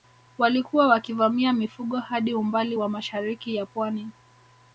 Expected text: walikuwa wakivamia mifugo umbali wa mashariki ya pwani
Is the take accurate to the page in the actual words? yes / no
no